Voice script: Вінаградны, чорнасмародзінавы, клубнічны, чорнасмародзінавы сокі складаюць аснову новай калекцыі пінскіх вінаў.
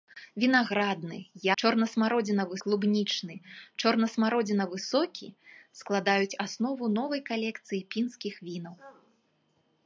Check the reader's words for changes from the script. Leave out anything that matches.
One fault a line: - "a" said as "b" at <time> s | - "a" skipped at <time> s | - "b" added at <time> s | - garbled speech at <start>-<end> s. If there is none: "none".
none